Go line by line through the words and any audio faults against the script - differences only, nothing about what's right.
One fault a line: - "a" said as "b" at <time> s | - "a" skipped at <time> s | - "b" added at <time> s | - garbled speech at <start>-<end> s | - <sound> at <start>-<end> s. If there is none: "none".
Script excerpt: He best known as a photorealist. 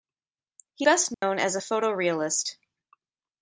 - dropout at 1.1-1.2 s